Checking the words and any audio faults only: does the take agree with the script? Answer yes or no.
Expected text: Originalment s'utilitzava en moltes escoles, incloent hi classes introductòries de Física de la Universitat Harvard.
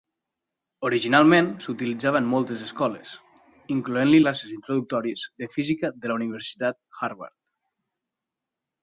yes